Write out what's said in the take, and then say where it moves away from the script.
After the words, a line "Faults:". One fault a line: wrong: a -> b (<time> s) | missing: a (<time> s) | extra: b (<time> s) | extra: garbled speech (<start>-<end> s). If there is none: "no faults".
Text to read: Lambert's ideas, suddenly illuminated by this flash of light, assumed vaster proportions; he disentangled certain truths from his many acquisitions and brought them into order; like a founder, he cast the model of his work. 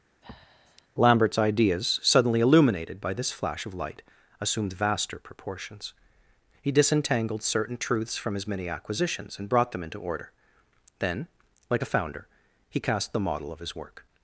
Lambert's ideas, suddenly illuminated by this flash of light, assumed vaster proportions; he disentangled certain truths from his many acquisitions and brought them into order; then, like a founder, he cast the model of his work.
Faults:
extra: then (11.0 s)